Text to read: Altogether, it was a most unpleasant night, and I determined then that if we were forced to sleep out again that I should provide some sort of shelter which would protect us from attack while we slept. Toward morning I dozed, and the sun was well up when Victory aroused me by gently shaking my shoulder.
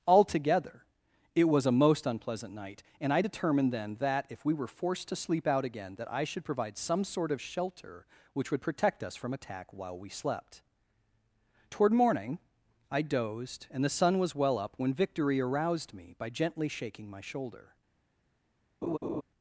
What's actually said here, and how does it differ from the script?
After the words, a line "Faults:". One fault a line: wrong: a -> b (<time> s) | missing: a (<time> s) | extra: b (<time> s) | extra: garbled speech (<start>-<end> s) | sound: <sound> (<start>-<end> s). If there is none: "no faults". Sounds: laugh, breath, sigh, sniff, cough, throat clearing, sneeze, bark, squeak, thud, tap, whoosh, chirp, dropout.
Altogether, it was a most unpleasant night, and I determined then that if we were forced to sleep out again that I should provide some sort of shelter which would protect us from attack while we slept. Toward morning I dozed, and the sun was well up when Victory aroused me by gently shaking my shoulder.
Faults:
sound: laugh (18.8-19.2 s)